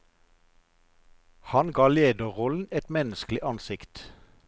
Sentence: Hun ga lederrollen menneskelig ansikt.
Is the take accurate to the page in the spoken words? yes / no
no